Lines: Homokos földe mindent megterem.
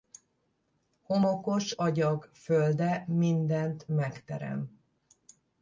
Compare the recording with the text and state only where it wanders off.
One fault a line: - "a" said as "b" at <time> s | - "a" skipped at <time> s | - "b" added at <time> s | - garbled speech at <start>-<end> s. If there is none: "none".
- "agyag" added at 1.7 s